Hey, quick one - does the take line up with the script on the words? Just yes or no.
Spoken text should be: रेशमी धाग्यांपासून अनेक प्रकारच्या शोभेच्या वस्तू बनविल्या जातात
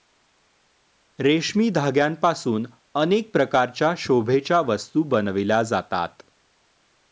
yes